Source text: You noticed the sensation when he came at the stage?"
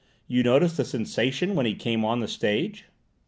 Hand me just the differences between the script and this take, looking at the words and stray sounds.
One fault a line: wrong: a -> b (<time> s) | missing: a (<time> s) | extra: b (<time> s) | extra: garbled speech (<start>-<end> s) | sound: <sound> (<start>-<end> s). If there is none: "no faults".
wrong: at -> on (2.0 s)